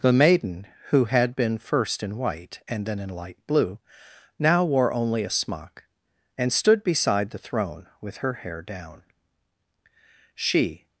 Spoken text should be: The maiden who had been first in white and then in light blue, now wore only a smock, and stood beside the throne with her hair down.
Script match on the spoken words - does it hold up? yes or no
no